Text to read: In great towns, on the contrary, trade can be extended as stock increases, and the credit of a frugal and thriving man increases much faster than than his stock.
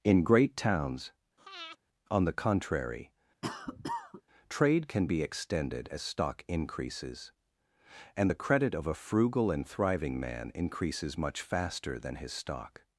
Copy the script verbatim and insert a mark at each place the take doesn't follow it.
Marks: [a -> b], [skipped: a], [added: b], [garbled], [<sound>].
In great towns, [breath] on the contrary, [cough] trade can be extended as stock increases, and the credit of a frugal and thriving man increases much faster than [skipped: than] his stock.